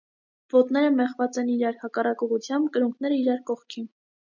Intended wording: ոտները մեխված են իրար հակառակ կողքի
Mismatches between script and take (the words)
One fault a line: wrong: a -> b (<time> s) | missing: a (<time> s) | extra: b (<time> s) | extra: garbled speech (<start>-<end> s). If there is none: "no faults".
extra: ուղղությամբ կրունկները իրար (2.3 s)